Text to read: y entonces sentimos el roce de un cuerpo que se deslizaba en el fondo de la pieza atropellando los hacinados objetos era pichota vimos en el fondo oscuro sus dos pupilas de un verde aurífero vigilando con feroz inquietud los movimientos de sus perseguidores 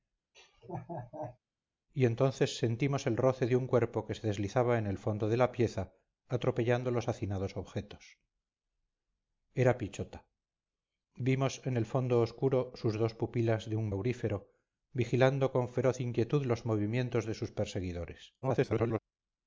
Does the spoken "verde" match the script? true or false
false